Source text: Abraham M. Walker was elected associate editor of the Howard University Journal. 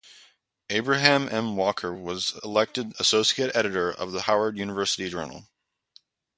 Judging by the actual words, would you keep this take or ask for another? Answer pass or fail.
pass